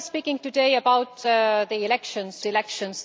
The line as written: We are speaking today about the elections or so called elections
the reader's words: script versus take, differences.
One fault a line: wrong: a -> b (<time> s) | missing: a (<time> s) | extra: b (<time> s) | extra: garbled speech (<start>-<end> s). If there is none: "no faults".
missing: or so called (2.4 s)